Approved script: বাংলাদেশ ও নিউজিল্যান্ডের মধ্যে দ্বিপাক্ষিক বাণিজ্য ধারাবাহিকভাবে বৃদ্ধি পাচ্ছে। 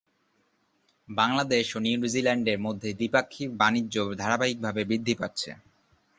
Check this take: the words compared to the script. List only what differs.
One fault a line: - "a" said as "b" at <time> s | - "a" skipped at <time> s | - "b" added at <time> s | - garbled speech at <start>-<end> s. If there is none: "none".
none